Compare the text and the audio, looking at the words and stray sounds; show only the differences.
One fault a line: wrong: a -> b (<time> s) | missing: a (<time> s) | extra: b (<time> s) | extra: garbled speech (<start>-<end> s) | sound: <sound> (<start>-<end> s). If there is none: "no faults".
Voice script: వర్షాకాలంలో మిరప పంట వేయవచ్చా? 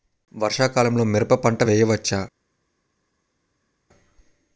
no faults